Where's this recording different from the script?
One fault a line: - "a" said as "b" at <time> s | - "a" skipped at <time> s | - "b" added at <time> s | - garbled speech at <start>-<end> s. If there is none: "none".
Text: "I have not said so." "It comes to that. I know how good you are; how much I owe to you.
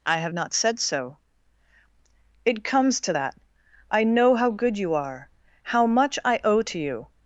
none